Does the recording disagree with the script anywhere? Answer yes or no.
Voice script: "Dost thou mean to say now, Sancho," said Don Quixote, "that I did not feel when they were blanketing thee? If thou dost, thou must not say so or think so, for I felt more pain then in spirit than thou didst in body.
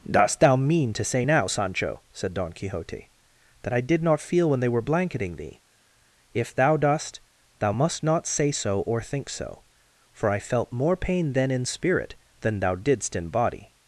no